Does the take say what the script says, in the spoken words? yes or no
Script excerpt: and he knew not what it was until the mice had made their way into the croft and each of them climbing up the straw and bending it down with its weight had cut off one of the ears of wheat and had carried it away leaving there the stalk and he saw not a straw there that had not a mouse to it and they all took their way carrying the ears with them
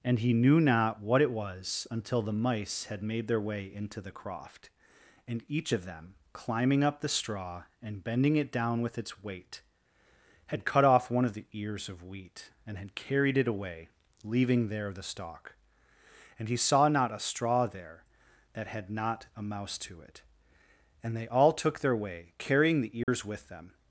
yes